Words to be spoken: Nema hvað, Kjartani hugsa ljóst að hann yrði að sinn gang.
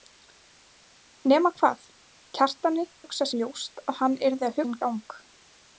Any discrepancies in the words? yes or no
no